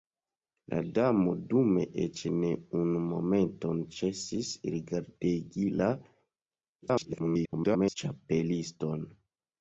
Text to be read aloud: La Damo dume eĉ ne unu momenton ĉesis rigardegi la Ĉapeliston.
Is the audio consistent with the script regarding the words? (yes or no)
no